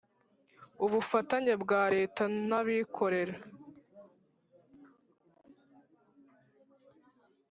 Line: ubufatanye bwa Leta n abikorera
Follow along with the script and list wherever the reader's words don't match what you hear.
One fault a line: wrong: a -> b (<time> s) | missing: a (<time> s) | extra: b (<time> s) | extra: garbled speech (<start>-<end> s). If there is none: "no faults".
no faults